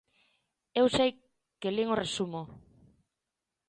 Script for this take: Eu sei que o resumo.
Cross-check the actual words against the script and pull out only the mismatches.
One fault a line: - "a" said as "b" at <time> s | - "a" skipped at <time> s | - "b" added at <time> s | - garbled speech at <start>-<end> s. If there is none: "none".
- "lin" added at 1.8 s